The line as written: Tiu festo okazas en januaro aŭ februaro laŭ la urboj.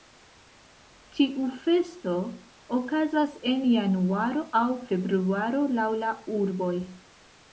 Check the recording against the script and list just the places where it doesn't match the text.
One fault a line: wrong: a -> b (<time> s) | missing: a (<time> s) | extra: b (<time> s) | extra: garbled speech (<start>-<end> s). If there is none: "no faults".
no faults